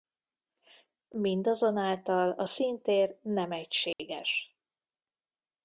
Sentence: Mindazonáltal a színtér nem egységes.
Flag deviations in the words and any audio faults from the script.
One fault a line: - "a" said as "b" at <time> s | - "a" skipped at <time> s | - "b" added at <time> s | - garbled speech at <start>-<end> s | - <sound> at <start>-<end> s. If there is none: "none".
- dropout at 3.9-4.0 s